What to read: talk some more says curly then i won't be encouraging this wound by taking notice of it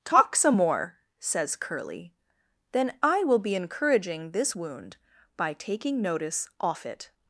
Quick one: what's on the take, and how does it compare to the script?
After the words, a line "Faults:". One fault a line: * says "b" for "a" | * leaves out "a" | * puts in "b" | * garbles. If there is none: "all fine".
talk some more says curly then i will be encouraging this wound by taking notice off it
Faults:
* says "will" for "won't"
* says "off" for "of"